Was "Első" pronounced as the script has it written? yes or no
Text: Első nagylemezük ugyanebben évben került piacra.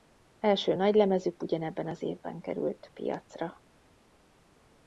yes